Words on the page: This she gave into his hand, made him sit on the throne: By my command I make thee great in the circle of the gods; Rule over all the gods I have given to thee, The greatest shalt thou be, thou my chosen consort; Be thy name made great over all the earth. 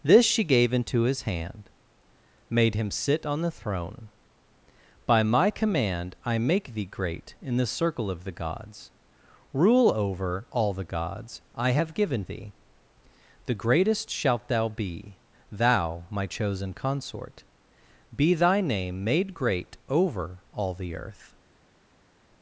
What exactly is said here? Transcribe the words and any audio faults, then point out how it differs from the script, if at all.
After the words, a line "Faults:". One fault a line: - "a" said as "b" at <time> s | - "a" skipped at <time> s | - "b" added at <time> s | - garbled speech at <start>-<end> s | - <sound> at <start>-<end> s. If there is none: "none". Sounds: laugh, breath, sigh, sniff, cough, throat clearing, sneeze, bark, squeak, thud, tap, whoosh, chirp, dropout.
This she gave into his hand, made him sit on the throne: By my command I make thee great in the circle of the gods; Rule over all the gods I have given thee, The greatest shalt thou be, thou my chosen consort; Be thy name made great over all the earth.
Faults:
- "to" skipped at 12.2 s